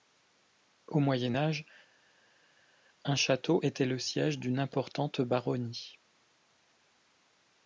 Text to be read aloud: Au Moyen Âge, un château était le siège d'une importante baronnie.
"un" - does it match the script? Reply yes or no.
yes